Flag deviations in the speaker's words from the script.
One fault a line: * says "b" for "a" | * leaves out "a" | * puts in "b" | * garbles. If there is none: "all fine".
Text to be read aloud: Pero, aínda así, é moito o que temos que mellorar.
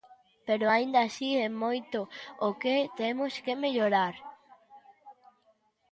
all fine